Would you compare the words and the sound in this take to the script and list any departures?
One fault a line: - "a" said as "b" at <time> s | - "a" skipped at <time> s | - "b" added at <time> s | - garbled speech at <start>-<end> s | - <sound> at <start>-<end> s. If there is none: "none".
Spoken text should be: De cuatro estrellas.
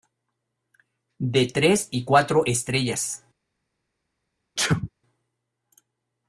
- "tres y" added at 1.4 s
- sneeze at 4.6-4.9 s